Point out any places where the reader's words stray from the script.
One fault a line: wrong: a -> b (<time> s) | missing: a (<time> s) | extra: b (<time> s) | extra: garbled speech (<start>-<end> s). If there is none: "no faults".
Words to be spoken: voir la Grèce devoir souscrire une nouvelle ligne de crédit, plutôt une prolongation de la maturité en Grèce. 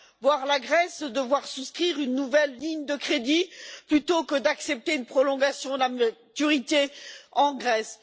extra: que d'accepter (4.2 s)